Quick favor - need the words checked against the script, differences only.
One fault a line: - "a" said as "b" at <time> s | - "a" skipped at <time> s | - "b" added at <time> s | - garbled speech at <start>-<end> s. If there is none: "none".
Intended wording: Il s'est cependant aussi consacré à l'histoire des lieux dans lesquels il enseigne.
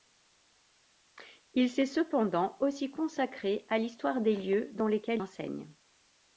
- "il" skipped at 5.2 s